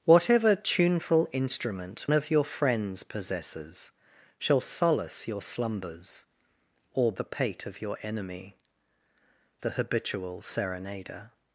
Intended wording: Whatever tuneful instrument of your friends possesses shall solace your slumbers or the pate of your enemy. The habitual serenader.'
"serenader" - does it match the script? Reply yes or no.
yes